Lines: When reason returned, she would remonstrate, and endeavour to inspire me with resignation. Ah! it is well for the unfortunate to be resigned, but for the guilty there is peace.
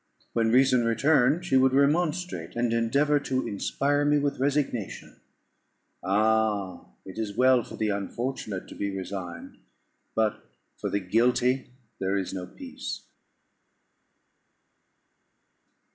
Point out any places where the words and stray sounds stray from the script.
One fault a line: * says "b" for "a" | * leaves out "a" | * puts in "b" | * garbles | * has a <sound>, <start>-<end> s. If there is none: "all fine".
* puts in "no"